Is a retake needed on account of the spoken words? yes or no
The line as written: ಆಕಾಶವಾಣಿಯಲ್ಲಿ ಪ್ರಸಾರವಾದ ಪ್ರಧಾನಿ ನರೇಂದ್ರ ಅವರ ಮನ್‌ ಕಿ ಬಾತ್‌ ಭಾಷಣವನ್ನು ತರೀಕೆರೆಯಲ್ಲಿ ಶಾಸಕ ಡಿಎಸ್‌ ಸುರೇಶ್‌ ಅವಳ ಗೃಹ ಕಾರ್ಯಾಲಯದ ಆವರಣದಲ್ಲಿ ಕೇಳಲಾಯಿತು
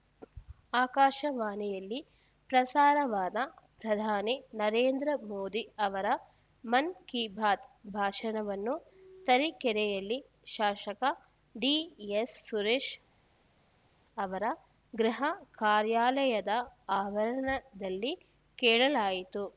yes